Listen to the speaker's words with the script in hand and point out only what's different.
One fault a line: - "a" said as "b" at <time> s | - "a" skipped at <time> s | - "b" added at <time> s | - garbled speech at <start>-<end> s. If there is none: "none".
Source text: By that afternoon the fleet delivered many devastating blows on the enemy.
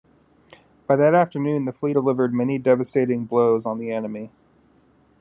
none